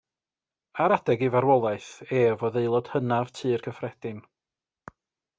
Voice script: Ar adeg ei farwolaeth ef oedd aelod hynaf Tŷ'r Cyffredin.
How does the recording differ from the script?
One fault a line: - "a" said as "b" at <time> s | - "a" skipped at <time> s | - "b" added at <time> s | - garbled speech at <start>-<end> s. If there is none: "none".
none